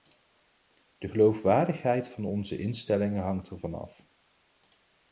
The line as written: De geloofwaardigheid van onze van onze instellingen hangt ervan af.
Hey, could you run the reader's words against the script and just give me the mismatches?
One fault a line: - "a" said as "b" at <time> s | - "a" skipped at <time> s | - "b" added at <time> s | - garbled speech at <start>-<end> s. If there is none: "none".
- "van onze" skipped at 2.6 s